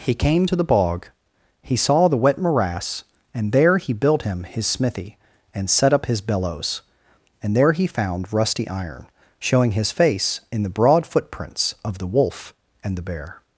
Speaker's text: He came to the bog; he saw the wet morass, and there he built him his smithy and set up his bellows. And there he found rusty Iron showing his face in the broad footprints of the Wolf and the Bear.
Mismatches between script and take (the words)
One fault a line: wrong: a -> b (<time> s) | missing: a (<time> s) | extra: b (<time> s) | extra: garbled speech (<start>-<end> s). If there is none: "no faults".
no faults